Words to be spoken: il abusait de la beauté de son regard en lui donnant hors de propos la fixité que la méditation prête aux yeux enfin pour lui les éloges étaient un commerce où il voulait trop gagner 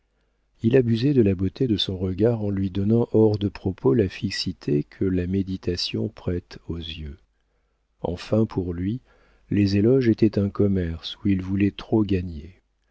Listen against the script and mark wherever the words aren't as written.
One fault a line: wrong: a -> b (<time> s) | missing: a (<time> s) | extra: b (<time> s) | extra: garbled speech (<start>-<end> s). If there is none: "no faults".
no faults